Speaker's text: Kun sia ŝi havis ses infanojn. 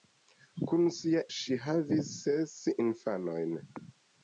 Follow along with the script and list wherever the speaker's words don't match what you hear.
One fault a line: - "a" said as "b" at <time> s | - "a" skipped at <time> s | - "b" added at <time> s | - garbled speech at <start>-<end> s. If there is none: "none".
none